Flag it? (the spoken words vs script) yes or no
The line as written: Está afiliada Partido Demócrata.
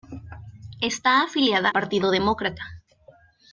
no